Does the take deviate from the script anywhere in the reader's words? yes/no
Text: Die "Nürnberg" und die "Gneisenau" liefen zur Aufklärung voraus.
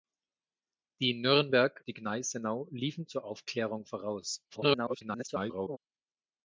yes